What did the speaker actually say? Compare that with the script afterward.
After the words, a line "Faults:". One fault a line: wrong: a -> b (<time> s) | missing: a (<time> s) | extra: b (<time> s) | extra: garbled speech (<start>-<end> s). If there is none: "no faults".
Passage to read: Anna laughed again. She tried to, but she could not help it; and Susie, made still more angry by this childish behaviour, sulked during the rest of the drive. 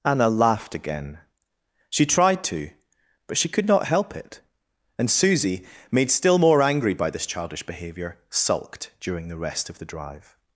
Anna laughed again. She tried to, but she could not help it; and Susie, made still more angry by this childish behaviour, sulked during the rest of the drive.
Faults:
no faults